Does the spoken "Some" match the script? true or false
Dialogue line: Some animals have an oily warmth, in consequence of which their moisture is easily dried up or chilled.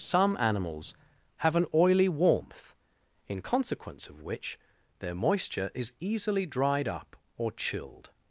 true